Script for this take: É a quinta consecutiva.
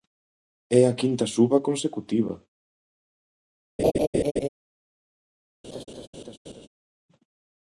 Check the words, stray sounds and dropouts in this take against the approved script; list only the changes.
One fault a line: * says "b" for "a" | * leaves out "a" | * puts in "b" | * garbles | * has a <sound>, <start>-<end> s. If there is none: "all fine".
* puts in "suba"
* has a laugh, 3.8-4.5 s
* has a laugh, 5.6-6.7 s